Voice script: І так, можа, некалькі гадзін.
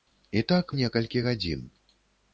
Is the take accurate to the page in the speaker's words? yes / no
no